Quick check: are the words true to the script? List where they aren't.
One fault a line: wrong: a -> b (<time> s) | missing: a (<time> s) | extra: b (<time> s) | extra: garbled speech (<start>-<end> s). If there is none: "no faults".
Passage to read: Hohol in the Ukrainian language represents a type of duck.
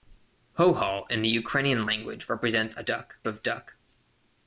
wrong: type -> duck (2.9 s)